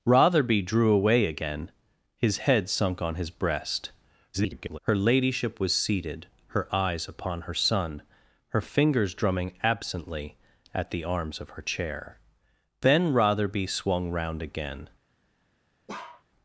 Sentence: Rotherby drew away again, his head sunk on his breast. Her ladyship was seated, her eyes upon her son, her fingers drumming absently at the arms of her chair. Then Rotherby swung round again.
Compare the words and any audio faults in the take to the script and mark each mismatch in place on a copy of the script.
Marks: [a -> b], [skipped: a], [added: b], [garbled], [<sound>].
Rotherby drew away again, his head sunk on his breast. [garbled] Her ladyship was seated, her eyes upon her son, her fingers drumming absently at the arms of her chair. Then Rotherby swung round again. [bark]